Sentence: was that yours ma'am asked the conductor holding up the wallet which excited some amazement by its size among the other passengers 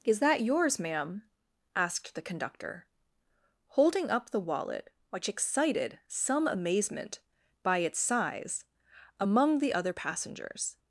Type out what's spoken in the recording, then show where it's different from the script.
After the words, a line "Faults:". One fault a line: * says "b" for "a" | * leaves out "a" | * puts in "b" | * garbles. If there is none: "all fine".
is that yours ma'am asked the conductor holding up the wallet which excited some amazement by its size among the other passengers
Faults:
* says "is" for "was"